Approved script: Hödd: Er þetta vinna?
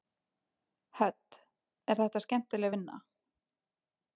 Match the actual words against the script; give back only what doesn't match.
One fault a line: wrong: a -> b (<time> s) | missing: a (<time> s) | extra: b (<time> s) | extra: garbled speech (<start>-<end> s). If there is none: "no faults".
extra: skemmtileg (2.2 s)